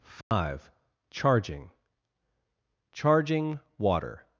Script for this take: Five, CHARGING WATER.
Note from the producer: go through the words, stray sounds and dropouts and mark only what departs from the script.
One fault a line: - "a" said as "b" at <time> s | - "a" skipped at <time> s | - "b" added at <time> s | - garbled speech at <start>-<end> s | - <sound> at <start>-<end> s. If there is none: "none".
- dropout at 0.2-0.3 s
- "CHARGING" added at 2.9 s